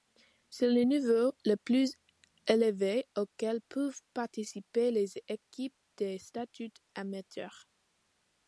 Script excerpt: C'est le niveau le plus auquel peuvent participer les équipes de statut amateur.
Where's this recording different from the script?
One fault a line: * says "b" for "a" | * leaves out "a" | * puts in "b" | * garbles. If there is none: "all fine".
* puts in "élevé"